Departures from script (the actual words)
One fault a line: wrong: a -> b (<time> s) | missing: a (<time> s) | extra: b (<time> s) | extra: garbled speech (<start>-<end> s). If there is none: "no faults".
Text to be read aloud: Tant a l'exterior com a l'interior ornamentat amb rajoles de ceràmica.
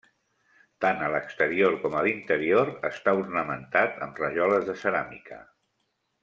extra: està (2.9 s)